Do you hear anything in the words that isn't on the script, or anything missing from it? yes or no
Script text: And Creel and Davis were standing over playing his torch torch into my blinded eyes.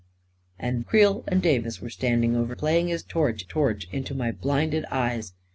no